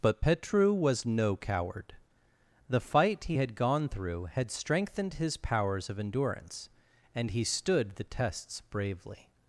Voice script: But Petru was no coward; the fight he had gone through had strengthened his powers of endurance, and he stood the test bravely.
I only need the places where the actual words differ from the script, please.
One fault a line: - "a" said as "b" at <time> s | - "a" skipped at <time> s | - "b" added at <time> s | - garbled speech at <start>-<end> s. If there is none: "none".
- "test" said as "tests" at 8.0 s